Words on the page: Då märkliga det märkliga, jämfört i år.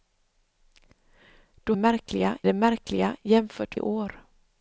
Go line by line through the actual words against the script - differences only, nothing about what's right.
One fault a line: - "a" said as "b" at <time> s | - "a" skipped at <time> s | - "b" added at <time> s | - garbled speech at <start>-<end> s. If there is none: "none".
none